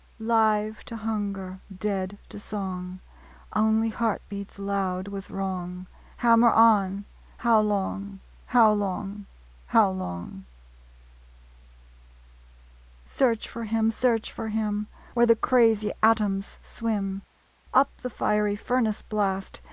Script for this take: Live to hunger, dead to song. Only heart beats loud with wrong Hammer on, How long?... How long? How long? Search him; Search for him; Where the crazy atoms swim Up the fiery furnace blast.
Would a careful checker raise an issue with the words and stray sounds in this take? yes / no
yes